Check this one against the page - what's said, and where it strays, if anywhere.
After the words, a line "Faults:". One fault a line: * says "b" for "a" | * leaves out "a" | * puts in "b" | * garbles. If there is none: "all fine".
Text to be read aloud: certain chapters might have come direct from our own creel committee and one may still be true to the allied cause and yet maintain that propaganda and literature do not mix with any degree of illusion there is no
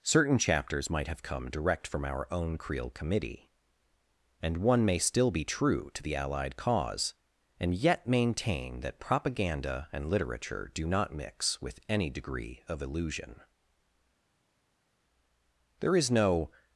certain chapters might have come direct from our own creel committee and one may still be true to the allied cause and yet maintain that propaganda and literature do not mix with any degree of illusion there is no
Faults:
all fine